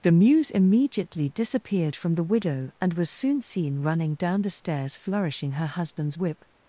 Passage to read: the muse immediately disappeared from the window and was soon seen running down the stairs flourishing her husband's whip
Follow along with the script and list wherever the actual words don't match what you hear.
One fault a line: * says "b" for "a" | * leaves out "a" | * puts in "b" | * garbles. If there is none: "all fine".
* says "widow" for "window"